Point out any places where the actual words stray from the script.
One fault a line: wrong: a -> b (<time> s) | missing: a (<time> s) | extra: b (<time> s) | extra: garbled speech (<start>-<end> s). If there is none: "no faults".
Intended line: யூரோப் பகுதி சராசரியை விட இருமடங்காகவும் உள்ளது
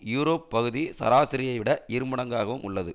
no faults